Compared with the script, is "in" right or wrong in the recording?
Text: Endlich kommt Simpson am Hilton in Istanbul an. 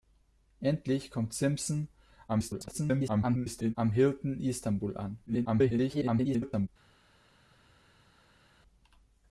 wrong